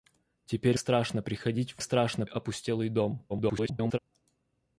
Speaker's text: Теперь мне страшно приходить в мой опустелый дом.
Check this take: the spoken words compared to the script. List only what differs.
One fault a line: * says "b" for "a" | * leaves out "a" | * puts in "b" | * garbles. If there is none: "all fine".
* leaves out "мне"
* says "страшно" for "мой"
* garbles